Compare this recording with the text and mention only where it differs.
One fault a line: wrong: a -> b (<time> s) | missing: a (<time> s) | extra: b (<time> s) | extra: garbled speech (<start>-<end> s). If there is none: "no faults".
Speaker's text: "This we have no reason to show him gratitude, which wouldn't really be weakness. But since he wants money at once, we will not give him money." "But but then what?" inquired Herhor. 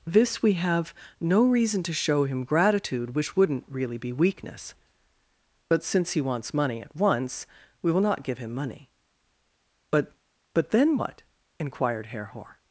no faults